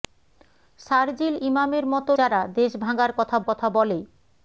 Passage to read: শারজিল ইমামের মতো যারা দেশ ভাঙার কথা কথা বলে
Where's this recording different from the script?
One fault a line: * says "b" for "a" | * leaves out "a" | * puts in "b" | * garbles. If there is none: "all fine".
all fine